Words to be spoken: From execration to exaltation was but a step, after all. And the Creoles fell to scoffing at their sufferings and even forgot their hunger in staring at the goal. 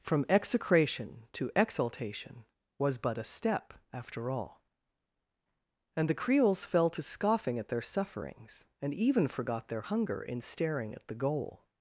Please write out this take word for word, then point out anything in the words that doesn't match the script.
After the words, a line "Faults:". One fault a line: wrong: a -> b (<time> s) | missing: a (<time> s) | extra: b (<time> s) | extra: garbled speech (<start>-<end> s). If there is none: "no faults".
From execration to exaltation was but a step, after all. And the Creoles fell to scoffing at their sufferings and even forgot their hunger in staring at the goal.
Faults:
no faults